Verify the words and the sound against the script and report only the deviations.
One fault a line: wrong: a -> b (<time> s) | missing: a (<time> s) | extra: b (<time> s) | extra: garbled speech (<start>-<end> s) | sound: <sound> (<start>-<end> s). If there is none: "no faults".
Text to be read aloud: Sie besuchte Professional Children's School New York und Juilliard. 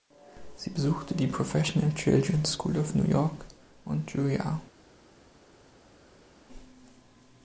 extra: die (1.1 s)
extra: of (2.8 s)